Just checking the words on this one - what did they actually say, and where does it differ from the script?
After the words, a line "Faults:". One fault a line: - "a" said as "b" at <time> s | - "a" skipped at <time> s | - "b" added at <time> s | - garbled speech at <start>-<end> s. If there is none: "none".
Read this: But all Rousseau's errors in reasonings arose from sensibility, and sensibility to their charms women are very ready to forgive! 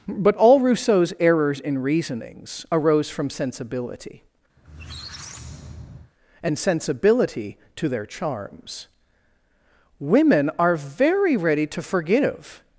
But all Rousseau's errors in reasonings arose from sensibility, and sensibility to their charms women are very ready to forgive!
Faults:
none